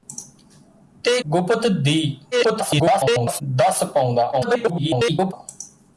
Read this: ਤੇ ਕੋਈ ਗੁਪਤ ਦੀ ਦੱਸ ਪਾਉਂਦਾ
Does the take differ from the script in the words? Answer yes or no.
yes